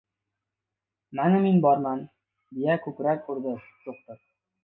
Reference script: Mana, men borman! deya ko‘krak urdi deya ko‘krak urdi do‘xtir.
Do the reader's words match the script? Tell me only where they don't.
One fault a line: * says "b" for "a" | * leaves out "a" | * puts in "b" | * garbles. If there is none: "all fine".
* leaves out "deya ko‘krak urdi"